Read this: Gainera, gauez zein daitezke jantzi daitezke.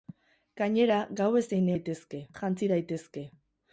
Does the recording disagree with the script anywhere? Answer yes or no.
no